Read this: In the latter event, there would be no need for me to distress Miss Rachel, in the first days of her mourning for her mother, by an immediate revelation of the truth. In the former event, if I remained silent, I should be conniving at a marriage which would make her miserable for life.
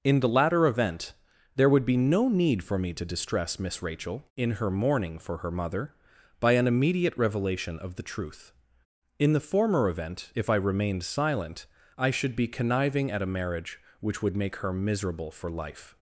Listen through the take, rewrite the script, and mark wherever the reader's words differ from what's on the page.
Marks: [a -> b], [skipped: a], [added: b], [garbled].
In the latter event, there would be no need for me to distress Miss Rachel, in [skipped: the first days of] her mourning for her mother, by an immediate revelation of the truth. In the former event, if I remained silent, I should be conniving at a marriage which would make her miserable for life.